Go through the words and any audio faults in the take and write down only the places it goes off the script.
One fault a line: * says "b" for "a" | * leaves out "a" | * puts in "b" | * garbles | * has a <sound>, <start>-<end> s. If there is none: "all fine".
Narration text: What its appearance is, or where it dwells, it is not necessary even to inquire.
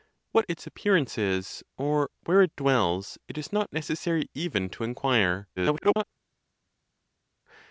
* garbles